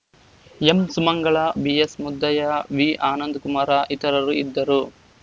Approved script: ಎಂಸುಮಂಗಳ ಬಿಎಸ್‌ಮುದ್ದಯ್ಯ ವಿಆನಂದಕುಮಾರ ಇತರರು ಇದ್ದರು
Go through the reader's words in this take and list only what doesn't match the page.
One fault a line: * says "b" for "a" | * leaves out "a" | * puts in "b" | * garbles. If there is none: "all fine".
all fine